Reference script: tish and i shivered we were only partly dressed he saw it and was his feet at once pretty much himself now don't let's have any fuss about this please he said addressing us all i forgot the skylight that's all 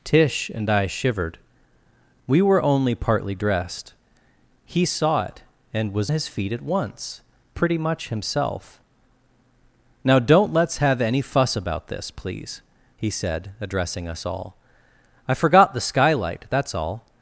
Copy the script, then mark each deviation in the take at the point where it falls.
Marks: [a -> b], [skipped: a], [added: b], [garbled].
tish and i shivered we were only partly dressed he saw it and was his feet at once pretty much himself now don't let's have any fuss about this please he said addressing us all i forgot the skylight that's all